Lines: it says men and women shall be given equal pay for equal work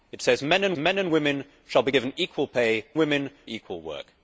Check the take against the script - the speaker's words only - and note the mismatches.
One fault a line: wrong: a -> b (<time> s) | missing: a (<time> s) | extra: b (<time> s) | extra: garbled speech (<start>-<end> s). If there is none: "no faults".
extra: men and (0.8 s)
wrong: for -> women (3.0 s)